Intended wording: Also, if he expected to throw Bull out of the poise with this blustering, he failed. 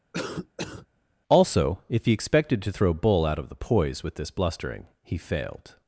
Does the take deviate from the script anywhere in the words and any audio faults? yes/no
yes